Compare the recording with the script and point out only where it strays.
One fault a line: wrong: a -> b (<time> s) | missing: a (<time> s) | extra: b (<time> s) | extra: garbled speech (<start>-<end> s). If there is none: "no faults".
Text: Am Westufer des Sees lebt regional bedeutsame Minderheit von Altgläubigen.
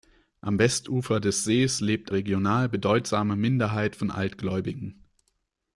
no faults